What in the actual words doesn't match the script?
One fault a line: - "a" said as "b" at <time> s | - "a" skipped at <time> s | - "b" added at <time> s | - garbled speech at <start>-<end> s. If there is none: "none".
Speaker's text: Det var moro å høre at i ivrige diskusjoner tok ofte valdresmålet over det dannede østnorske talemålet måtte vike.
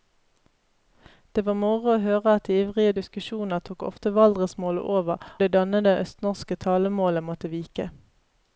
none